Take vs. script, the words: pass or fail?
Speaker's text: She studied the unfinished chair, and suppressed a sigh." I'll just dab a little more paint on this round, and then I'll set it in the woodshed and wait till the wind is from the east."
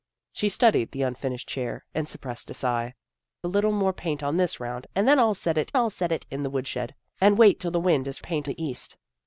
fail